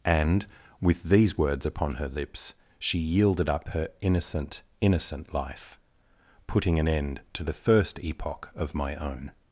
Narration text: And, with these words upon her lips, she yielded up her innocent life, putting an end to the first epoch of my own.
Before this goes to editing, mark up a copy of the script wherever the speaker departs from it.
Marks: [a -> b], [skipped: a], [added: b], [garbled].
And, with these words upon her lips, she yielded up her innocent [added: innocent] life, putting an end to the first epoch of my own.